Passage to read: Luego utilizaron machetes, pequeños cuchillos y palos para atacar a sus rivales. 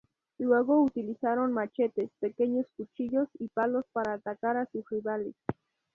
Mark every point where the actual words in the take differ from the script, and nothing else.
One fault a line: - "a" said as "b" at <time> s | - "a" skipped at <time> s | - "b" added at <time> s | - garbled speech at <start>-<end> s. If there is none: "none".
none